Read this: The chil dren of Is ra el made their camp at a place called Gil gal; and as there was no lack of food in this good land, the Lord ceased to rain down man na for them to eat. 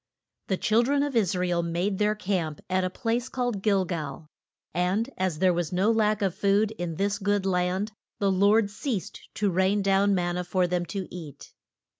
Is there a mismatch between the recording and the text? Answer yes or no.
no